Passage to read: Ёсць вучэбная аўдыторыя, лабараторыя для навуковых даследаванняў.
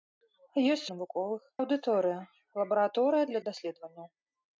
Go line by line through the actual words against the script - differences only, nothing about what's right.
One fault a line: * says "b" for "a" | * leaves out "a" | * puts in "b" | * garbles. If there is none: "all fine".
* says "навуковых" for "вучэбная"
* leaves out "навуковых"